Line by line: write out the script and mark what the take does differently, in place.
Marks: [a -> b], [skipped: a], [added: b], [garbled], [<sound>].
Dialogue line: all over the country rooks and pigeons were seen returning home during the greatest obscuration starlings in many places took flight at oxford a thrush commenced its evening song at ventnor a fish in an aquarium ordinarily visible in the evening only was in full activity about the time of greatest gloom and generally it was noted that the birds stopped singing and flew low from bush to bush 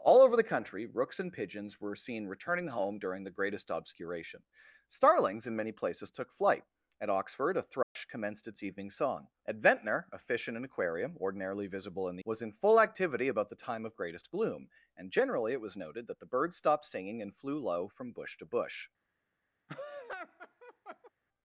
all over the country rooks and pigeons were seen returning home during the greatest obscuration starlings in many places took flight at oxford a thrush [dropout] commenced its evening song at ventnor a fish in an aquarium ordinarily visible in the [skipped: evening only] was in full activity about the time of greatest gloom and generally it was noted that the birds stopped singing and flew low from bush to bush [laugh]